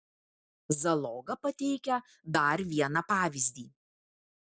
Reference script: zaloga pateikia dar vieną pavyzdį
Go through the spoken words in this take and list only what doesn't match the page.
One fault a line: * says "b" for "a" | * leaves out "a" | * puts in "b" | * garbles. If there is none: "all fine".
all fine